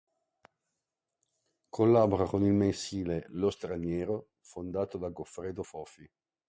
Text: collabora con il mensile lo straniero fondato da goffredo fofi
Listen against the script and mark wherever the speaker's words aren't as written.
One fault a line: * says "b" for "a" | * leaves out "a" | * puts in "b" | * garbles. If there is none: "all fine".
all fine